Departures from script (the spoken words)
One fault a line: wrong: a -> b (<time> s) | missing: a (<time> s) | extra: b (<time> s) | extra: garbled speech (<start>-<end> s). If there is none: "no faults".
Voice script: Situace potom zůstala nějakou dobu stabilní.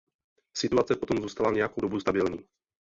no faults